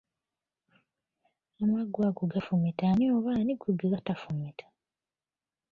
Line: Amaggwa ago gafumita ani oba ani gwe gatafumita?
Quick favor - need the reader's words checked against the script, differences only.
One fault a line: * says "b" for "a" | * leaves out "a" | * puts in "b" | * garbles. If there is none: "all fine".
all fine